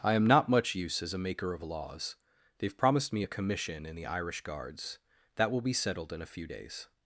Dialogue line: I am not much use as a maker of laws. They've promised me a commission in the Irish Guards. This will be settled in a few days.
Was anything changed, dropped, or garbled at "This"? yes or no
yes